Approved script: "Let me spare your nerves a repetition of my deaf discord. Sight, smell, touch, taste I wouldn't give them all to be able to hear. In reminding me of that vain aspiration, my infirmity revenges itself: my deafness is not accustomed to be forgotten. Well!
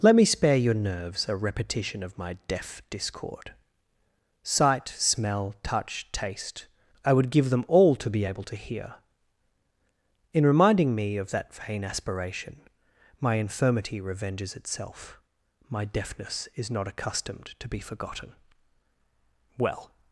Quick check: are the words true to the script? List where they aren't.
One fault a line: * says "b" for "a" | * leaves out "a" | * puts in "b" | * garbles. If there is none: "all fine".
* says "would" for "wouldn't"